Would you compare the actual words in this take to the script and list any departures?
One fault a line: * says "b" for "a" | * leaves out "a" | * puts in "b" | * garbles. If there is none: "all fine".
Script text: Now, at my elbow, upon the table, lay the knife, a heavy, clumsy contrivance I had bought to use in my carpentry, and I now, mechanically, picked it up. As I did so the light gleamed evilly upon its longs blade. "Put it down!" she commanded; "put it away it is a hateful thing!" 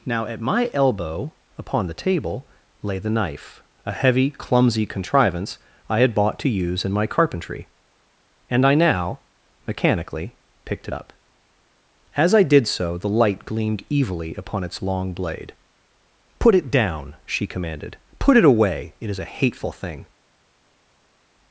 * says "long" for "longs"